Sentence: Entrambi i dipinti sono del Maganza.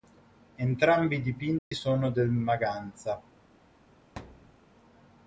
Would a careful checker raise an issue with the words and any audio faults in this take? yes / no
yes